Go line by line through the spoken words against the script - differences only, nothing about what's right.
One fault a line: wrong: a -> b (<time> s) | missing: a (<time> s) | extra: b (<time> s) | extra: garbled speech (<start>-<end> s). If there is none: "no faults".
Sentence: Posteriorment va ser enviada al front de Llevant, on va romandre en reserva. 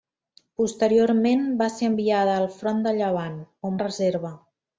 missing: va romandre (3.8 s)